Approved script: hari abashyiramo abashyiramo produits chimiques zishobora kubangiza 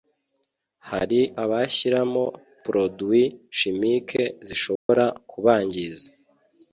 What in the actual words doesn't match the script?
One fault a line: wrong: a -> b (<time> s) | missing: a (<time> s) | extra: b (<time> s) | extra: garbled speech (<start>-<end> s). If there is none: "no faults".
missing: abashyiramo (2.2 s)